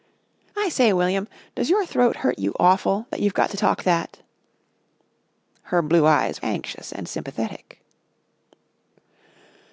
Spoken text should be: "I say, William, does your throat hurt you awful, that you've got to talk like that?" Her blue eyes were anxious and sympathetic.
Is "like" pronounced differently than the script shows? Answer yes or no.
yes